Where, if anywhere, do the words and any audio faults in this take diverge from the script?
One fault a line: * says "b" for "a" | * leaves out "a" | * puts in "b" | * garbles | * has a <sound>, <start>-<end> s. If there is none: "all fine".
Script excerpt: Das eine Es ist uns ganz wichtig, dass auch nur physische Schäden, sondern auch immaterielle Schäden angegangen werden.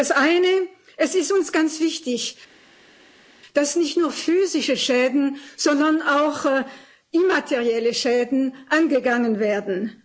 * says "nicht" for "auch"